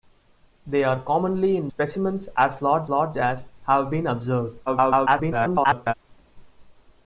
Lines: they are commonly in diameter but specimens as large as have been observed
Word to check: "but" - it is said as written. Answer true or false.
false